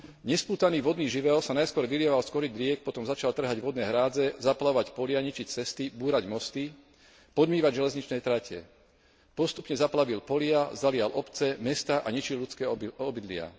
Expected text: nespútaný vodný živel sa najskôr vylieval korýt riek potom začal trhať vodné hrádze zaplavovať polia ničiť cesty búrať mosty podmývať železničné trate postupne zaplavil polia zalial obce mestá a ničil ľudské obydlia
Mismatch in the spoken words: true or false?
true